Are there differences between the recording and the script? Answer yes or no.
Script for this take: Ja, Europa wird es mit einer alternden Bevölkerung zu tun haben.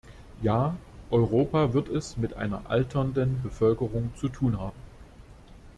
no